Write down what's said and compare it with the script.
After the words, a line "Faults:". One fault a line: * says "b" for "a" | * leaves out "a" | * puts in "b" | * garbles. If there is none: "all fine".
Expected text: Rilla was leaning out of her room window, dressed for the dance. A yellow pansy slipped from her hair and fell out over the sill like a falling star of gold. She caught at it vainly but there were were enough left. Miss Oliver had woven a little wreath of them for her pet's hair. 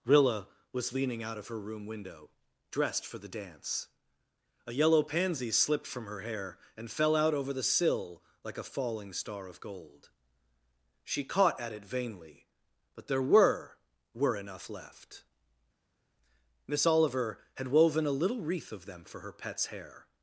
Rilla was leaning out of her room window, dressed for the dance. A yellow pansy slipped from her hair and fell out over the sill like a falling star of gold. She caught at it vainly but there were were enough left. Miss Oliver had woven a little wreath of them for her pet's hair.
Faults:
all fine